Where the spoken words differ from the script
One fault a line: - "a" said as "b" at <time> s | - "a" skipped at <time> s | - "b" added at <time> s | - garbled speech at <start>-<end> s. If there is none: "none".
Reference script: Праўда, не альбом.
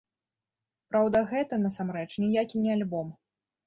- "гэта насамрэч ніякі" added at 1.3 s